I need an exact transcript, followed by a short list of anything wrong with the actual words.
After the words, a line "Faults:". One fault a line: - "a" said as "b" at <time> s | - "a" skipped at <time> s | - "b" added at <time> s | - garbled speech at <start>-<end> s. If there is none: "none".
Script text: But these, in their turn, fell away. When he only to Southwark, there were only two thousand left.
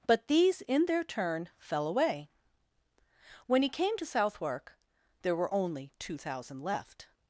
But these, in their turn, fell away. When he came to Southwark, there were only two thousand left.
Faults:
- "only" said as "came" at 3.7 s